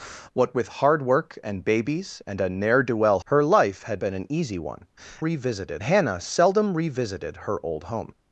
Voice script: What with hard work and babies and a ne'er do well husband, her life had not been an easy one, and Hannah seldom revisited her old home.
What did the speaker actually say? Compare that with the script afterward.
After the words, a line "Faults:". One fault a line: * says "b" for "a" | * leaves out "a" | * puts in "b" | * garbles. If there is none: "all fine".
What with hard work and babies and a ne'er do well her life had been an easy one, revisited Hannah seldom revisited her old home.
Faults:
* leaves out "husband"
* leaves out "not"
* says "revisited" for "and"